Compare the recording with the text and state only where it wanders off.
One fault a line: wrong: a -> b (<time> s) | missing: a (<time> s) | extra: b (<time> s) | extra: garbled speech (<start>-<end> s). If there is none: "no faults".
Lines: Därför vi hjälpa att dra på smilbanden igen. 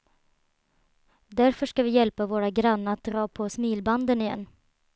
extra: ska (1.6 s)
extra: våra grannar (2.2 s)